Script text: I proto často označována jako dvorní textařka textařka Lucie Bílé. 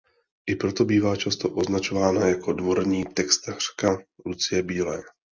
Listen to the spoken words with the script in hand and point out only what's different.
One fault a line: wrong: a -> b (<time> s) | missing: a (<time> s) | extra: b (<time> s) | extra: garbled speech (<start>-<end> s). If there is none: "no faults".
extra: bývá (0.8 s)
missing: textařka (4.0 s)